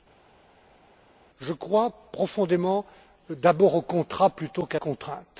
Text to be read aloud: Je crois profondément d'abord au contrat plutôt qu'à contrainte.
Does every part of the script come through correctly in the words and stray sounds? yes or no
yes